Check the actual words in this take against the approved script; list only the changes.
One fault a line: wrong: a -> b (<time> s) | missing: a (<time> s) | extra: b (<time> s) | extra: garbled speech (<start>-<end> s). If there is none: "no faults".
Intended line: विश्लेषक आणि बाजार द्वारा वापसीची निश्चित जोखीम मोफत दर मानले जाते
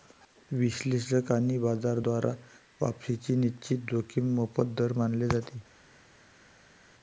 no faults